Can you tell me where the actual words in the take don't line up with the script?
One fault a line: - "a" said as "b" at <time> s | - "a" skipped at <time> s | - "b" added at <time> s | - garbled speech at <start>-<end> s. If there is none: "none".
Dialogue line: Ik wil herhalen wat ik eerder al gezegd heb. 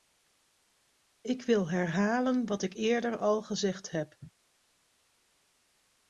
none